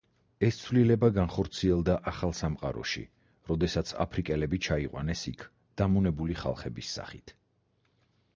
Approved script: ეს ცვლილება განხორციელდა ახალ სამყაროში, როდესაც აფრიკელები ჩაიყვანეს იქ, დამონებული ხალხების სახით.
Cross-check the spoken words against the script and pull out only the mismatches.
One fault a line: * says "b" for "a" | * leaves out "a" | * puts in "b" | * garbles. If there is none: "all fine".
all fine